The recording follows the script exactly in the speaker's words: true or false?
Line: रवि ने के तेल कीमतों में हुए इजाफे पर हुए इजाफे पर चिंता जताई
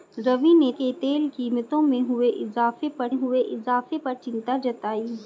true